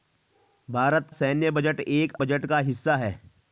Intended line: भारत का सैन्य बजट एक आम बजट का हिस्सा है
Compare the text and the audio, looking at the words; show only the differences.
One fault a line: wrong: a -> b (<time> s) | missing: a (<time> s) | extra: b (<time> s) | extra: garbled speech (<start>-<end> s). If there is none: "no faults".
missing: का (1.1 s)
missing: आम (2.1 s)